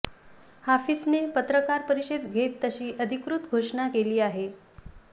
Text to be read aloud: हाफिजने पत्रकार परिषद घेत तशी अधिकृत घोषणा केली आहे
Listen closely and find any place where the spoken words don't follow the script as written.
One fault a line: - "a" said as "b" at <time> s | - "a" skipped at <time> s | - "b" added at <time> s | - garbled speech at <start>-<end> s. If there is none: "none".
none